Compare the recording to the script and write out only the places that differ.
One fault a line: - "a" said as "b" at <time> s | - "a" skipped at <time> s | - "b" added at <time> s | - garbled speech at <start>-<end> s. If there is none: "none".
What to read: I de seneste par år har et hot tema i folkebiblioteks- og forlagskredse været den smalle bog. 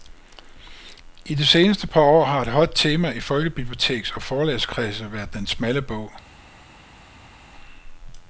none